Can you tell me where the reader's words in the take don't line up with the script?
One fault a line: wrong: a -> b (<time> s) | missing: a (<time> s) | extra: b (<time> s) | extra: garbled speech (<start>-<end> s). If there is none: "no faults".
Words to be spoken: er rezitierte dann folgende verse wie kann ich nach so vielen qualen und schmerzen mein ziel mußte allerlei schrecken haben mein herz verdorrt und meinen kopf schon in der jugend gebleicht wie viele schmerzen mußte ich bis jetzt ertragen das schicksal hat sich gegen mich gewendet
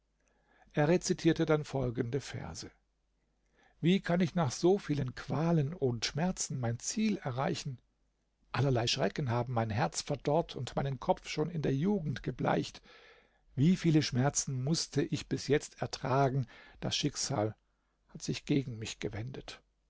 wrong: mußte -> erreichen (7.2 s)